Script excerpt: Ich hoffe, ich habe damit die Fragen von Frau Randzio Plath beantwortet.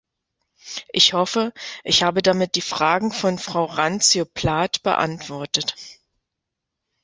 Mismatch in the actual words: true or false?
false